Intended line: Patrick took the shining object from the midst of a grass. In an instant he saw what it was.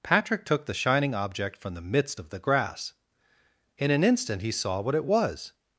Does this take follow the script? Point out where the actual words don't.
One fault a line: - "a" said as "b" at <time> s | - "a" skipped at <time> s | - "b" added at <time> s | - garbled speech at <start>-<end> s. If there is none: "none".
- "a" said as "the" at 2.3 s